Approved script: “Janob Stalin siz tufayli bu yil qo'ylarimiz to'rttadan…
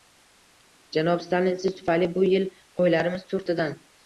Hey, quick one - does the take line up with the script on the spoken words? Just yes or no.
yes